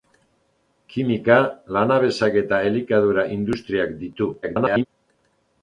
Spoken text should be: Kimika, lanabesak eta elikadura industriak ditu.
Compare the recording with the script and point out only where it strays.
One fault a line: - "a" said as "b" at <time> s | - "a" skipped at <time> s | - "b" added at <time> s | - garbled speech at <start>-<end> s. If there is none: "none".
- garbled speech at 4.4-4.9 s